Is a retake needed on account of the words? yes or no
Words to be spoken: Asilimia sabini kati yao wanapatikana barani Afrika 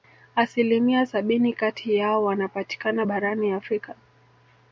no